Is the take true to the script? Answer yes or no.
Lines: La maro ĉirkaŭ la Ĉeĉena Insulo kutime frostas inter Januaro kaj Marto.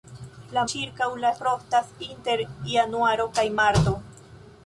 no